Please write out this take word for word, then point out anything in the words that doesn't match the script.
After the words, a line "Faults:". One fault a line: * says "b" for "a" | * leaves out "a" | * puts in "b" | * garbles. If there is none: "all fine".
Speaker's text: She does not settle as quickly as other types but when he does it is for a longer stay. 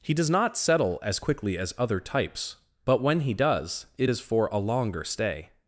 He does not settle as quickly as other types but when he does it is for a longer stay.
Faults:
* says "He" for "She"